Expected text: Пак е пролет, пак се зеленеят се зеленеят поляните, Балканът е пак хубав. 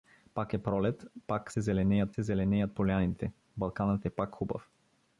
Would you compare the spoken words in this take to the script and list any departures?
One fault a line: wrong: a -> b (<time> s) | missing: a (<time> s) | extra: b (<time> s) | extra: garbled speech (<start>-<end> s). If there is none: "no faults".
no faults